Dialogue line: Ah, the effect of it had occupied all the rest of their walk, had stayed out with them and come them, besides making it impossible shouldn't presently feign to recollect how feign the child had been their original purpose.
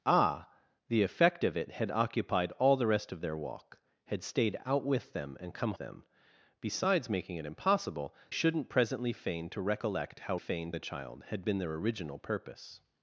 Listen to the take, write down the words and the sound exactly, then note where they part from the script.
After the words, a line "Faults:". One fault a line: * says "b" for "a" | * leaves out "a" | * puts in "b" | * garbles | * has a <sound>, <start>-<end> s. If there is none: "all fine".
Ah, the effect of it had occupied all the rest of their walk, had stayed out with them and come them, besides making it impossible shouldn't presently feign to recollect how feign the child had been their original purpose.
Faults:
all fine